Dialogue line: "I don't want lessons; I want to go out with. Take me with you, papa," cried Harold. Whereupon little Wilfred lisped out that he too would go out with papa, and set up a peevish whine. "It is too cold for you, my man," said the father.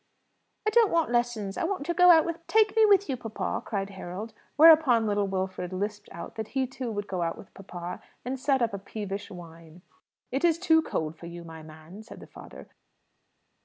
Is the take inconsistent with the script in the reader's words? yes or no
no